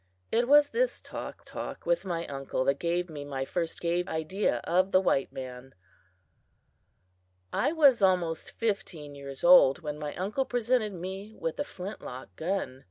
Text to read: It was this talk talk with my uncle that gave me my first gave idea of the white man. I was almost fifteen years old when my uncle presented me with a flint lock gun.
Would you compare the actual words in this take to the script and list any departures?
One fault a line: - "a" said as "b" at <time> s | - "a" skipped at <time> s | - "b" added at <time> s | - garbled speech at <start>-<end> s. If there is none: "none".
none